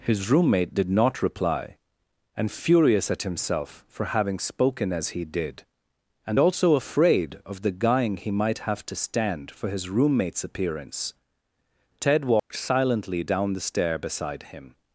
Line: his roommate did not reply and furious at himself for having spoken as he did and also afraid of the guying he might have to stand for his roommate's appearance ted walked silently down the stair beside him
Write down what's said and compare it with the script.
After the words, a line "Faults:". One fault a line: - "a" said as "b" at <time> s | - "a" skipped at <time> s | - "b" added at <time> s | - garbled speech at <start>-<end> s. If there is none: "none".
his roommate did not reply and furious at himself for having spoken as he did and also afraid of the guying he might have to stand for his roommate's appearance ted walked silently down the stair beside him
Faults:
none